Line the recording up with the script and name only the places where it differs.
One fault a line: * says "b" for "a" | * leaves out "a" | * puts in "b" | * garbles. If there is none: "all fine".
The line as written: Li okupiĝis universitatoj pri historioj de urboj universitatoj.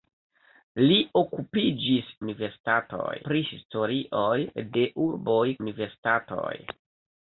all fine